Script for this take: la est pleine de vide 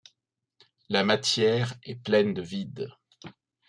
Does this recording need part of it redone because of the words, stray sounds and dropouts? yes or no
yes